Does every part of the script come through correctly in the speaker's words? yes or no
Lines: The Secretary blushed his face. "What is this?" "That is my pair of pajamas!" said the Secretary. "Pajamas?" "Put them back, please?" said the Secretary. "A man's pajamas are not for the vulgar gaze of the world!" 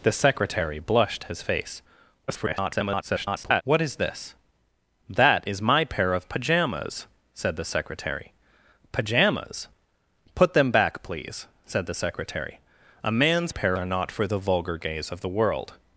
no